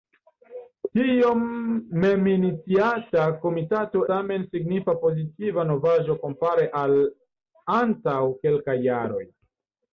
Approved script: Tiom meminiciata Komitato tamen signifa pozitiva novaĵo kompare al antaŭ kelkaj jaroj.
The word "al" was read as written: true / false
true